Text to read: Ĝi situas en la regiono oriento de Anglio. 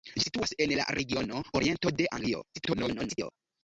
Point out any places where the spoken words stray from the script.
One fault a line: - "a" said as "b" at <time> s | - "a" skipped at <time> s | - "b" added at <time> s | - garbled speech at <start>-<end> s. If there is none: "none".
- garbled speech at 2.5-3.3 s